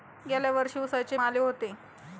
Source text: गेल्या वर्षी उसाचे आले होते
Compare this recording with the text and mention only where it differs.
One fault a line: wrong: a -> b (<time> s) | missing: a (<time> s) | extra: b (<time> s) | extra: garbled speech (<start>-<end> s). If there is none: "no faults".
no faults